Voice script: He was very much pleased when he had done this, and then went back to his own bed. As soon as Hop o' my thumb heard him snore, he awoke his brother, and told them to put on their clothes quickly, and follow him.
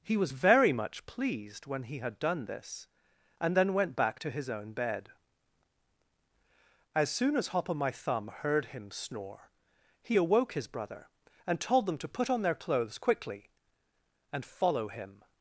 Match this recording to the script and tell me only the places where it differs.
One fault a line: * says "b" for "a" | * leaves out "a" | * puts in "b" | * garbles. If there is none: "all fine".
all fine